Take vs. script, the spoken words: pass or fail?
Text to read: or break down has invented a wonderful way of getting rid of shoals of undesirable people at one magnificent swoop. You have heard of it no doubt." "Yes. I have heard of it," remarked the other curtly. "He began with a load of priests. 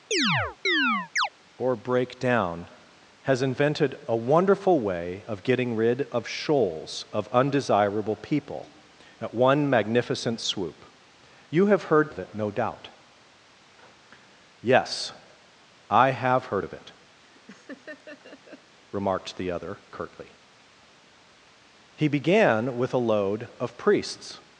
pass